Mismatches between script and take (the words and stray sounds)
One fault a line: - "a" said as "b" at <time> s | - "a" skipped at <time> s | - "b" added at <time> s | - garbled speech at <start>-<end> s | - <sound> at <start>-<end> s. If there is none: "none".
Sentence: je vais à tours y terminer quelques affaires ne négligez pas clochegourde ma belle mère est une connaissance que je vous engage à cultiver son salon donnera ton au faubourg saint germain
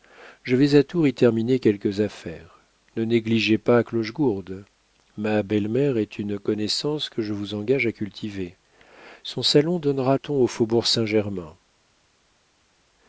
none